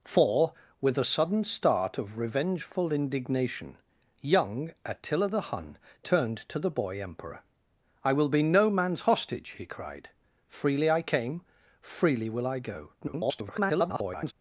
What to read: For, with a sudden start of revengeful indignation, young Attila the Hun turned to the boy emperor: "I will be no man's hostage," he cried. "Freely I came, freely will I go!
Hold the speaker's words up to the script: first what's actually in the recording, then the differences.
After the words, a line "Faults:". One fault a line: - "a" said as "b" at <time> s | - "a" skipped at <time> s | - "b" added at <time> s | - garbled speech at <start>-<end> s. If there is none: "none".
For, with a sudden start of revengeful indignation, young Attila the Hun turned to the boy emperor: "I will be no man's hostage," he cried. "Freely I came, freely will I go! [garbled]
Faults:
- garbled speech at 13.0-14.3 s